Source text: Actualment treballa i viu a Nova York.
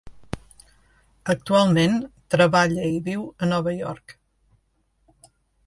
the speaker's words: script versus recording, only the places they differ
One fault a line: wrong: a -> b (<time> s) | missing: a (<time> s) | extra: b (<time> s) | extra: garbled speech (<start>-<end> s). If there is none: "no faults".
no faults